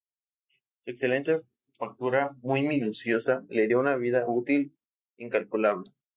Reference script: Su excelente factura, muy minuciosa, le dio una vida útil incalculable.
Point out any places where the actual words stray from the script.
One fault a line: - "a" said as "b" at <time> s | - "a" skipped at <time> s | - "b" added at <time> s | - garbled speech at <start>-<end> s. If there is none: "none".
none